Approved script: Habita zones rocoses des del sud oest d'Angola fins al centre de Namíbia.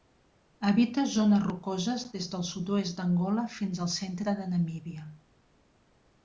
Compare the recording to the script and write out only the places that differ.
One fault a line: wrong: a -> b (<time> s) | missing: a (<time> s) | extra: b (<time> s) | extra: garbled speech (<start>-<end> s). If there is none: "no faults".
no faults